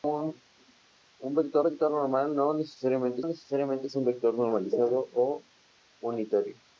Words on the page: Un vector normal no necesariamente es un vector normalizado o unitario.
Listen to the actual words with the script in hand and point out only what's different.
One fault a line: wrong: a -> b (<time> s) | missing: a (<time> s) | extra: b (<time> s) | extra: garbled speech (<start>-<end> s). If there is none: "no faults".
extra: vector (1.6 s)
extra: necesariamente (3.2 s)